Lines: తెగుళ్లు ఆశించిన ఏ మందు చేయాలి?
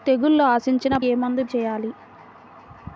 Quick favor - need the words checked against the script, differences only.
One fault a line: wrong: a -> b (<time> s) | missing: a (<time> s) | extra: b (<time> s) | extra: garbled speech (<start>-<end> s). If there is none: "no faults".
no faults